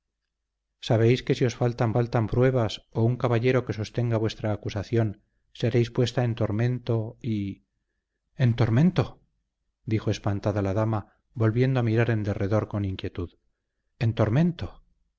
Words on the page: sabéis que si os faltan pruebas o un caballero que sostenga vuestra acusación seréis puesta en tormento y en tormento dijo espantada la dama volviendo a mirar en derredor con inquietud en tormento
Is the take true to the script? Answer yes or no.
no